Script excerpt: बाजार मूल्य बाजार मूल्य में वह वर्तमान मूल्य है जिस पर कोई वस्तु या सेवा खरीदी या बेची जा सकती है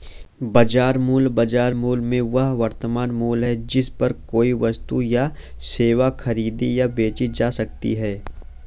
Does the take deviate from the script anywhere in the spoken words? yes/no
no